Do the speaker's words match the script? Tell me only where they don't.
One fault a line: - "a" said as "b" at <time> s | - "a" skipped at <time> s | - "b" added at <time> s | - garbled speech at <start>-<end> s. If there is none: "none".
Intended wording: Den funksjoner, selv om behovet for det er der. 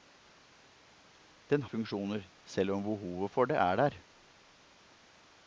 none